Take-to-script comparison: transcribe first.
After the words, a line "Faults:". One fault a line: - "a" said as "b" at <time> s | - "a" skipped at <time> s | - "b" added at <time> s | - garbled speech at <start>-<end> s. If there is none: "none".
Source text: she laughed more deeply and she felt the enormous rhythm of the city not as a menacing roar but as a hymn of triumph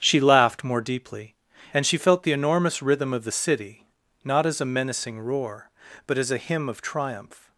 she laughed more deeply and she felt the enormous rhythm of the city not as a menacing roar but as a hymn of triumph
Faults:
none